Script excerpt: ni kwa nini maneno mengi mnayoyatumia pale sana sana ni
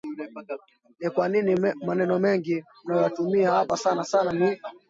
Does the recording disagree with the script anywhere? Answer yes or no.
yes